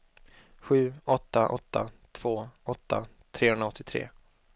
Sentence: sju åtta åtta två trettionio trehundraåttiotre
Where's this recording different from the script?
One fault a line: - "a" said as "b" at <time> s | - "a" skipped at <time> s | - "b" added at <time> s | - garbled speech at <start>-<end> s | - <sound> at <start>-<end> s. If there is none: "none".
- "trettionio" said as "åtta" at 2.6 s